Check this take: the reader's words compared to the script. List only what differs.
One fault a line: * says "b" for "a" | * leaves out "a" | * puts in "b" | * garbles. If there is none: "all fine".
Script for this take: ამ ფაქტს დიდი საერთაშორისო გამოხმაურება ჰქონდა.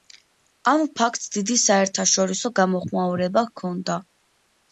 all fine